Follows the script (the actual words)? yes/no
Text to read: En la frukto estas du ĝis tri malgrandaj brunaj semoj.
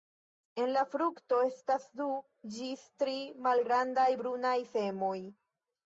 yes